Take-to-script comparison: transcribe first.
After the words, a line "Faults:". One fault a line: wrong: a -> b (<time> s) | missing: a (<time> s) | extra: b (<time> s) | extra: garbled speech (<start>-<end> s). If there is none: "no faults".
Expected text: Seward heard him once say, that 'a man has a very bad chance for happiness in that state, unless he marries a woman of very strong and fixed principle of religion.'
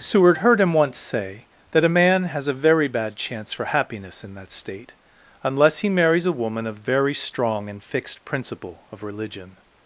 Seward heard him once say, that 'a man has a very bad chance for happiness in that state, unless he marries a woman of very strong and fixed principle of religion.'
Faults:
no faults